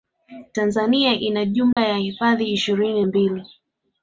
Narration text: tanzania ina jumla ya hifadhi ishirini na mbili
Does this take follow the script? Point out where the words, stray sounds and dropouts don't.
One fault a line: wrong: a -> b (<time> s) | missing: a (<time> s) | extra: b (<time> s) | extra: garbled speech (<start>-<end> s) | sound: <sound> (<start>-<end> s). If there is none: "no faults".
sound: dropout (1.7-1.8 s)
missing: na (3.0 s)